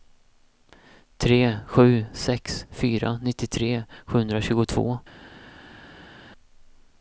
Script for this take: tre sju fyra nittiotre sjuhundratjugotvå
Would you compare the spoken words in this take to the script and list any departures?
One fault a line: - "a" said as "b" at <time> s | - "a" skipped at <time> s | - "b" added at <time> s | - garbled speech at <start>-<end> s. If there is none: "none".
- "sex" added at 2.2 s